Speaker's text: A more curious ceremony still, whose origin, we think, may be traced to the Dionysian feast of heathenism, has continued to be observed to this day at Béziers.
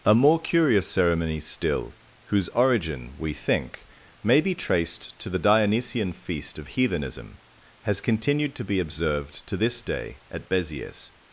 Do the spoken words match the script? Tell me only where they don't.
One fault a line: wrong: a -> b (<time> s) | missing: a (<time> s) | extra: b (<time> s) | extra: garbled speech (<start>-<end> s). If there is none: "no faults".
no faults